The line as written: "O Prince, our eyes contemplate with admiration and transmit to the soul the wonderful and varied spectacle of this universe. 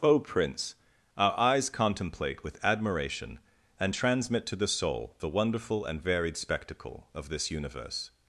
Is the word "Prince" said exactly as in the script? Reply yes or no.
yes